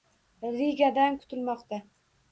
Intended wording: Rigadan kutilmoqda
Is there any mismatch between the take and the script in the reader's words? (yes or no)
no